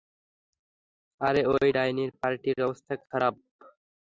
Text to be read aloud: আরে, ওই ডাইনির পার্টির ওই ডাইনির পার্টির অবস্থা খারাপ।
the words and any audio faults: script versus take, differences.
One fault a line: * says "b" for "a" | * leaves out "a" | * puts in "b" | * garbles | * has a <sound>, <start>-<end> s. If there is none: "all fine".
* leaves out "ওই ডাইনির পার্টির"